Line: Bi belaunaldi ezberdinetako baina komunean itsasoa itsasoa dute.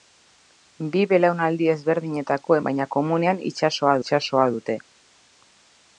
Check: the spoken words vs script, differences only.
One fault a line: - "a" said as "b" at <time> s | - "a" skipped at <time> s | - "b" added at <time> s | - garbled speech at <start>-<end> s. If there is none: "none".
none